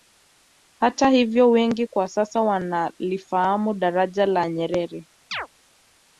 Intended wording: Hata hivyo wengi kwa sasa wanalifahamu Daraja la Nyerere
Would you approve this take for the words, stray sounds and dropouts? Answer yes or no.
no